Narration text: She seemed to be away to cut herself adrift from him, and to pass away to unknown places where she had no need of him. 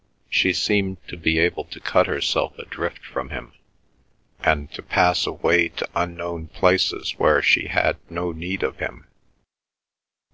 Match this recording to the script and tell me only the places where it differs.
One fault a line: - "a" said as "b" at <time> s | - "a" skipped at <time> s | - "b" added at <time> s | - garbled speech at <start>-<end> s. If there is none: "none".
- "away" said as "able" at 1.4 s